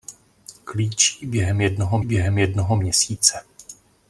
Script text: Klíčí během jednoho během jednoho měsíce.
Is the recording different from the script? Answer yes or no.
no